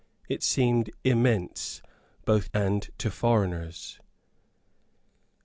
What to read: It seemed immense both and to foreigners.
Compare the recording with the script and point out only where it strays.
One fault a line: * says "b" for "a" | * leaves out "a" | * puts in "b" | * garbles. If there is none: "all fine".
all fine